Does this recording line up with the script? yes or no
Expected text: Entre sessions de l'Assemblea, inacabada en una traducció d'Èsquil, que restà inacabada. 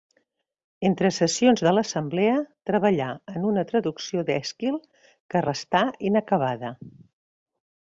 no